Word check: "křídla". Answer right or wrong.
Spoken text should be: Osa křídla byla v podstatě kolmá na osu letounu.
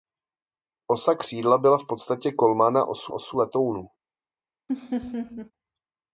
right